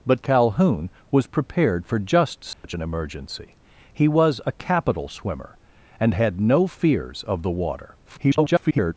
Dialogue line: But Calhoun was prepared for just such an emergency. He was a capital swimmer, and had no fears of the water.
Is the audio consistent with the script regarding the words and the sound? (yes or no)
no